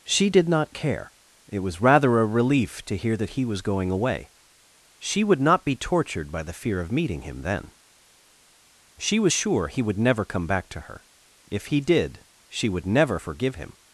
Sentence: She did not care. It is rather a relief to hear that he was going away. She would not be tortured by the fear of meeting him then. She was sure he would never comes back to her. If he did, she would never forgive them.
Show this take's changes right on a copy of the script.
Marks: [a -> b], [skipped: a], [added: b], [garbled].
She did not care. It [is -> was] rather a relief to hear that he was going away. She would not be tortured by the fear of meeting him then. She was sure he would never [comes -> come] back to her. If he did, she would never forgive [them. -> him]